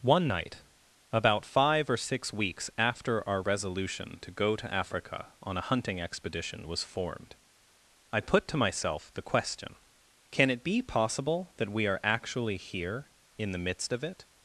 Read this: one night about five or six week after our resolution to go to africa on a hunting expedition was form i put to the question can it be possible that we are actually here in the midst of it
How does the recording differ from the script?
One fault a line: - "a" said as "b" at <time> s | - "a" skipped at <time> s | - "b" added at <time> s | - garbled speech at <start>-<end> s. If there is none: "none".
- "week" said as "weeks" at 2.3 s
- "form" said as "formed" at 6.8 s
- "myself" added at 8.6 s